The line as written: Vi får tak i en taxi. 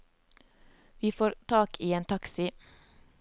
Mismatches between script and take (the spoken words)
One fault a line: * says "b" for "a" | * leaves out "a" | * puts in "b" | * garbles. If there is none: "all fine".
all fine